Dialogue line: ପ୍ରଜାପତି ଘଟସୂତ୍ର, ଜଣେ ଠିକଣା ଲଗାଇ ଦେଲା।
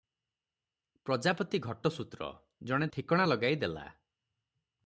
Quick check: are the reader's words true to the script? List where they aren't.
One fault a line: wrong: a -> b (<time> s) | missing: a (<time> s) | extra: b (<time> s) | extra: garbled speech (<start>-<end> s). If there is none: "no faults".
no faults